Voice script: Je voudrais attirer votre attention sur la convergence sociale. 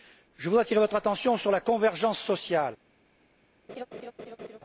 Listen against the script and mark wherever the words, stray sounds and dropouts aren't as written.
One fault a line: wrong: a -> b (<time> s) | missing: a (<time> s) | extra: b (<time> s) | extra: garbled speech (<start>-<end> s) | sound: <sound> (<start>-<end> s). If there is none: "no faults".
sound: laugh (3.7-4.6 s)